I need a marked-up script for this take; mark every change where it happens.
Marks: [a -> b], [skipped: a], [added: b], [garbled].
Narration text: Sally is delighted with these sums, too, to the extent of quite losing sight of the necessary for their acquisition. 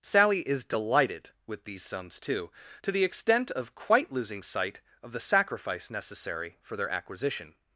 Sally is delighted with these sums, too, to the extent of quite losing sight of the [added: sacrifice] necessary for their acquisition.